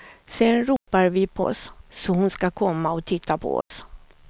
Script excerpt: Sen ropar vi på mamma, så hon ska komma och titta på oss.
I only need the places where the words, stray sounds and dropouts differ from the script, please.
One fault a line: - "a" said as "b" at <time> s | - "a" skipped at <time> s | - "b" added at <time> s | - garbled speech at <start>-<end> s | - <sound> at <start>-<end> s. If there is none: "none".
- dropout at 0.8-0.9 s
- "mamma" said as "oss" at 1.4 s
- dropout at 3.6-3.7 s